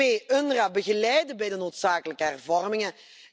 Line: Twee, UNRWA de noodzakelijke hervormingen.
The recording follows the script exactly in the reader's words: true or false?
false